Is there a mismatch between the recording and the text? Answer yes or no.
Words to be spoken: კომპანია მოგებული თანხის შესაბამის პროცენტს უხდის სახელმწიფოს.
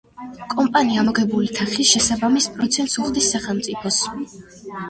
no